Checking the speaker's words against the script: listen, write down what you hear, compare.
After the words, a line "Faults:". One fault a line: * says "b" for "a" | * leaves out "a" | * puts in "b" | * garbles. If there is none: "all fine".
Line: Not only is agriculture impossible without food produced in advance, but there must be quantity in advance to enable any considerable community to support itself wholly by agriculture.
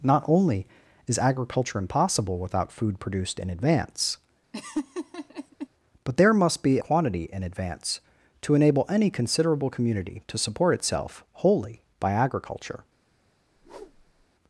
Not only is agriculture impossible without food produced in advance, but there must be quantity in advance to enable any considerable community to support itself wholly by agriculture.
Faults:
all fine